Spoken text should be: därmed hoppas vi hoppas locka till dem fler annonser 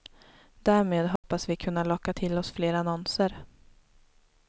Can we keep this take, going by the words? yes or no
no